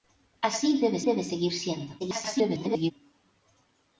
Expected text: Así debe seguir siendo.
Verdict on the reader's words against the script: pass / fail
fail